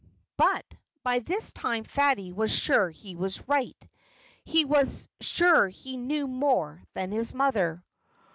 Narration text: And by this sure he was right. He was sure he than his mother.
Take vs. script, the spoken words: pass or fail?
fail